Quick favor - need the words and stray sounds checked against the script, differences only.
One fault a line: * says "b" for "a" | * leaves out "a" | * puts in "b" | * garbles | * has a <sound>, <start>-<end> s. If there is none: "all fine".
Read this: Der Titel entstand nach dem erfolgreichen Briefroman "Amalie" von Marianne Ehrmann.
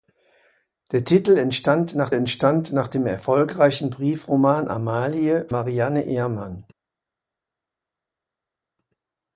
* puts in "entstand nach"
* leaves out "von"